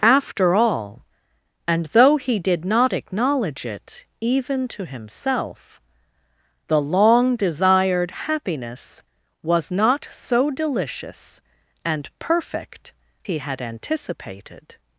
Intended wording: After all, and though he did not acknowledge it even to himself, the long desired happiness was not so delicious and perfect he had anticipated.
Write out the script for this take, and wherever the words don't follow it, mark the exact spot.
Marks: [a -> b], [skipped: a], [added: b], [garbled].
After all, and though he did not acknowledge it even to himself, the long desired happiness was not so delicious and perfect he had anticipated.